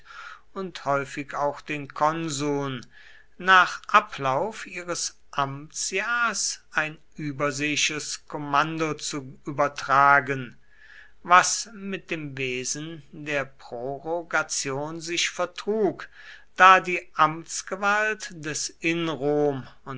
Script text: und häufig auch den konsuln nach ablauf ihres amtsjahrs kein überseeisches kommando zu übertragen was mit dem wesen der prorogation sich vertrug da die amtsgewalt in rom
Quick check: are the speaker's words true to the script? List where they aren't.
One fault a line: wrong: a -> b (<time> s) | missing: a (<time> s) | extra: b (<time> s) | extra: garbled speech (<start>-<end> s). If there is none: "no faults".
wrong: kein -> ein (6.7 s)
extra: des (18.3 s)